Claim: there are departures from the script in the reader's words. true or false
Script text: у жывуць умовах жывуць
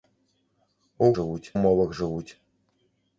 false